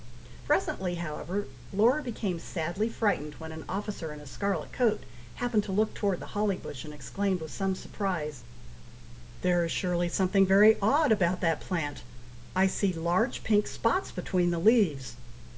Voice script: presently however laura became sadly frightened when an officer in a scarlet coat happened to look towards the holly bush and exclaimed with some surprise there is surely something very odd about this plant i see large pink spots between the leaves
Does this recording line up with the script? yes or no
no